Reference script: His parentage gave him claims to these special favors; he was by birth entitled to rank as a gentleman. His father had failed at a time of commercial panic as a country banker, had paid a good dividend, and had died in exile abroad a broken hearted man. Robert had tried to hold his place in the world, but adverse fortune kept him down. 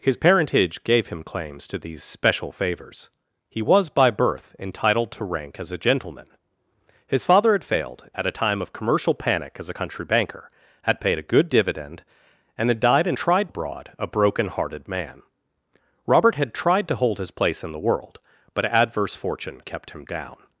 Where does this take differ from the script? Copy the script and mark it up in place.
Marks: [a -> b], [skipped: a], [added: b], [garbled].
His parentage gave him claims to these special favors; he was by birth entitled to rank as a gentleman. His father had failed at a time of commercial panic as a country banker, had paid a good dividend, and had died in [exile -> tried] abroad a broken hearted man. Robert had tried to hold his place in the world, but adverse fortune kept him down.